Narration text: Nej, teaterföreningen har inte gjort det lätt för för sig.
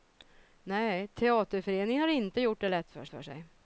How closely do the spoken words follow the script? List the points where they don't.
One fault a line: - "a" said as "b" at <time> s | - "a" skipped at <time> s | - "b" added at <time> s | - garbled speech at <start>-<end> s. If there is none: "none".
none